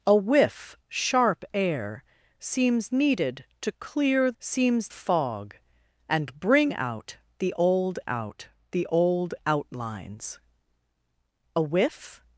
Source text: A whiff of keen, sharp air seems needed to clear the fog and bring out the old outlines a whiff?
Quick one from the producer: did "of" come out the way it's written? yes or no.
no